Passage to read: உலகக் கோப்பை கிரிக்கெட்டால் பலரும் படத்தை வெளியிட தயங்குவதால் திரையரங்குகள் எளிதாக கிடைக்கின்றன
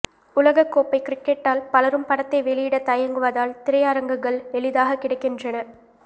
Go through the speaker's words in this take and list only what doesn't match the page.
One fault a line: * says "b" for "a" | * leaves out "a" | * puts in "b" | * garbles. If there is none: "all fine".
all fine